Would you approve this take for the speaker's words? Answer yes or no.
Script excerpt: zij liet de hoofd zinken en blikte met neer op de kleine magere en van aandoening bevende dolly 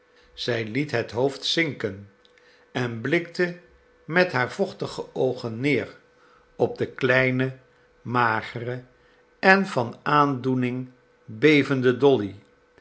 no